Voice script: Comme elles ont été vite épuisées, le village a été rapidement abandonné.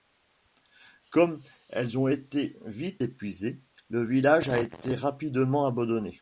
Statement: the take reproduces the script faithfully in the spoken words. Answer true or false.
true